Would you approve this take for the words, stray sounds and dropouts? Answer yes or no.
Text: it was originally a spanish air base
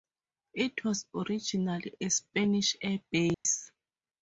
no